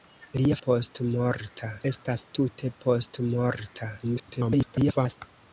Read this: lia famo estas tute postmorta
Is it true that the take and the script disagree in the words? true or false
true